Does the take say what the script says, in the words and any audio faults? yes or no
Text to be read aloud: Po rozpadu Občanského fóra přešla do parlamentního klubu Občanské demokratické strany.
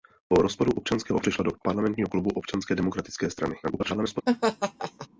no